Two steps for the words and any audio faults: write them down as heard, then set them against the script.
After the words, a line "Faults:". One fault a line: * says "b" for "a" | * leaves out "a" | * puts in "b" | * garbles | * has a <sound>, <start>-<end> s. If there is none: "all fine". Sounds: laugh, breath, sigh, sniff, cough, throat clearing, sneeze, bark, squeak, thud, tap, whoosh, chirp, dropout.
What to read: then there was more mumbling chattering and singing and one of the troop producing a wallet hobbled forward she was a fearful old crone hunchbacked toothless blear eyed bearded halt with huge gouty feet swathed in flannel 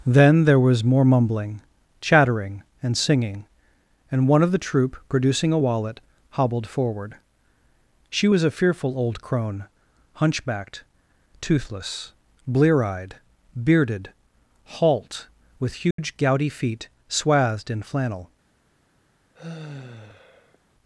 then there was more mumbling chattering and singing and one of the troop producing a wallet hobbled forward she was a fearful old crone hunchbacked toothless blear eyed bearded halt with huge gouty feet swathed in flannel
Faults:
* has a dropout, 15.9-16.0 s
* has a sigh, 19.3-20.6 s